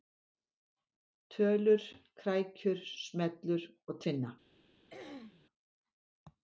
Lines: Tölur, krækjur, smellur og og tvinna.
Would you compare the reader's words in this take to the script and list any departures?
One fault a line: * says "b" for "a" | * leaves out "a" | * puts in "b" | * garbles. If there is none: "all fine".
* leaves out "og"